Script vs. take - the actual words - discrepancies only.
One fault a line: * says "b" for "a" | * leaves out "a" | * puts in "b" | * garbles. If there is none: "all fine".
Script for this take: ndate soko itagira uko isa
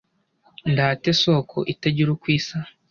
all fine